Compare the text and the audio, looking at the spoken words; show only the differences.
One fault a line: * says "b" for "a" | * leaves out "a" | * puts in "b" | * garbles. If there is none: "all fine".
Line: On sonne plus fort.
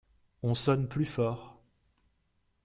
all fine